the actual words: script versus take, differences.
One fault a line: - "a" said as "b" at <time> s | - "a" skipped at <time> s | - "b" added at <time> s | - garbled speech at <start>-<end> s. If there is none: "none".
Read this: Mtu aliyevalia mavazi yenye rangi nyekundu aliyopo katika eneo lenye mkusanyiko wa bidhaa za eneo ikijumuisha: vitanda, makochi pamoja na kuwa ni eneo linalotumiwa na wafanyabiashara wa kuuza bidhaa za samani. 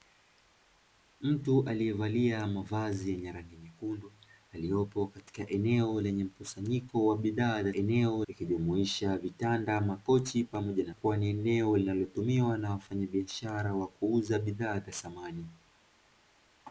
none